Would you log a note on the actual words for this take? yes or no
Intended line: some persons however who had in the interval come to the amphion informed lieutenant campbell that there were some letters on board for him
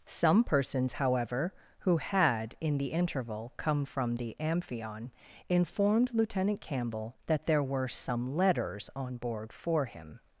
yes